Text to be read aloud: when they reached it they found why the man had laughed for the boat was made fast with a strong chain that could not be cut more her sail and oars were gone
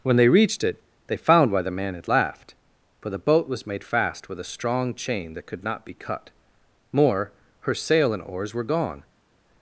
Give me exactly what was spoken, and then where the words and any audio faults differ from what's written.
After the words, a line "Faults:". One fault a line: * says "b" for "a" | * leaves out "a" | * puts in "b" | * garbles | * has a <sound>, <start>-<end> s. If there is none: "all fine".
when they reached it they found why the man had laughed for the boat was made fast with a strong chain that could not be cut more her sail and oars were gone
Faults:
all fine